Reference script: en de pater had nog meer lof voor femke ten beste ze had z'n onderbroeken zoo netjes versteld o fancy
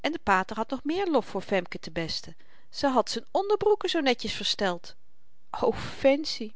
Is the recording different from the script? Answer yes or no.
no